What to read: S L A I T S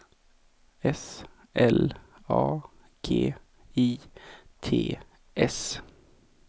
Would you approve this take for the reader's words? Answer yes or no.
no